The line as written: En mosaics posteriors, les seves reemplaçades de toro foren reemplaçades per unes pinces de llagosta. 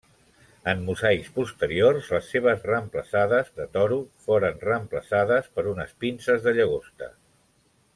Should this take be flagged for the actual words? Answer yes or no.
no